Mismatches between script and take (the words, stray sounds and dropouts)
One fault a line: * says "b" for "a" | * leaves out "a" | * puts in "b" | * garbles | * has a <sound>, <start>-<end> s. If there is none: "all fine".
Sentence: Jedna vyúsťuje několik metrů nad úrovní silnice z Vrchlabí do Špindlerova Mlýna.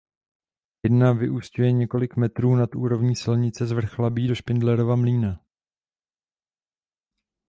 all fine